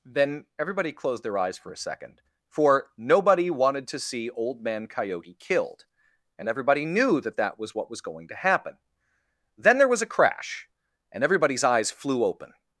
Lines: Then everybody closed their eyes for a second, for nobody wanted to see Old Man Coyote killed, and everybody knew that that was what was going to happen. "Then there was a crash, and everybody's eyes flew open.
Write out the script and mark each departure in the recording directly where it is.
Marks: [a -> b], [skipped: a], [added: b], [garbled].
Then everybody closed their eyes for a second, for nobody wanted to see Old Man Coyote killed, and everybody knew that that was what was going to happen. "Then there was a crash, and everybody's eyes flew open.